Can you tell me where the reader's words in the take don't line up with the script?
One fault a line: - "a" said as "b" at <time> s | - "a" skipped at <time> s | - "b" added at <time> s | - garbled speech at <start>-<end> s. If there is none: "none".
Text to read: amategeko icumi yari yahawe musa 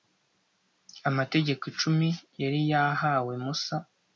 none